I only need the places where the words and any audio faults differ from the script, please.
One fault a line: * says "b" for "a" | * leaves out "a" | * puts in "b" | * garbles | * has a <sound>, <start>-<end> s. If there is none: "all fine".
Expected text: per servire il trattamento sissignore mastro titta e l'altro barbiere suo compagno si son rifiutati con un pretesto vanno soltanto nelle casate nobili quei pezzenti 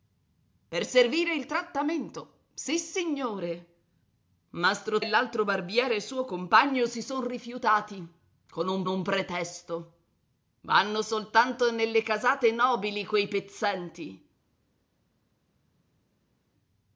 * leaves out "titta"
* puts in "un"